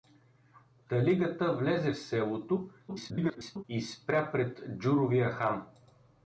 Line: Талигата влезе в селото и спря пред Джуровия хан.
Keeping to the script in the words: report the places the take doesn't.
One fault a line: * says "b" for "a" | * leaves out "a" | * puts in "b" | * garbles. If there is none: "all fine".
* garbles